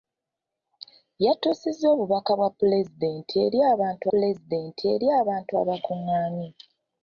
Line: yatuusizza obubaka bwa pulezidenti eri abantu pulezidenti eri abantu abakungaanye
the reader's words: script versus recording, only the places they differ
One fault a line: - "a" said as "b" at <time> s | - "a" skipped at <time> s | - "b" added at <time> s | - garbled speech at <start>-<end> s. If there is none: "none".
none